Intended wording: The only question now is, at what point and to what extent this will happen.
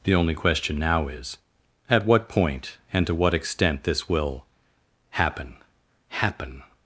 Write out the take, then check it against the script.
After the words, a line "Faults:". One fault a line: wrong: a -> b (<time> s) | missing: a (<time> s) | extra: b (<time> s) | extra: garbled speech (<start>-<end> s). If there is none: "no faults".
The only question now is, at what point and to what extent this will happen happen.
Faults:
extra: happen (6.1 s)